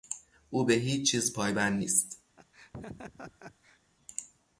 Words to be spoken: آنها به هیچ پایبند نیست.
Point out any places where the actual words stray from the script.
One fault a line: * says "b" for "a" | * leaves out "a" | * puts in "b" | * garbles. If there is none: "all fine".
* says "او" for "آنها"
* puts in "چیز"